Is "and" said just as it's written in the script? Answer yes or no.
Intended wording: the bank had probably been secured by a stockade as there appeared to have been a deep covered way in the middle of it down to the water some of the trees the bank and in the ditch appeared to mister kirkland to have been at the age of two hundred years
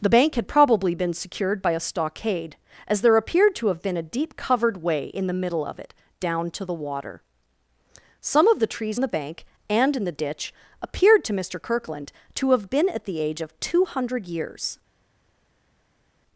yes